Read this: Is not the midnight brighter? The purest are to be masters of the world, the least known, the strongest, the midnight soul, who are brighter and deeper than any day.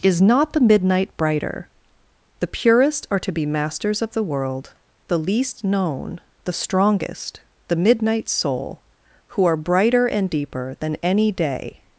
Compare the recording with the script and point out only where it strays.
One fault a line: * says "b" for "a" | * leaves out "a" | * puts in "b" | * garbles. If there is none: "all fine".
all fine